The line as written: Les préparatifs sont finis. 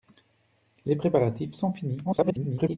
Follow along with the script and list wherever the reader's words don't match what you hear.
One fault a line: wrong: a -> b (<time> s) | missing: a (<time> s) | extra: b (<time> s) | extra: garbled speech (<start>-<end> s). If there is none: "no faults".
extra: garbled speech (2.0-2.8 s)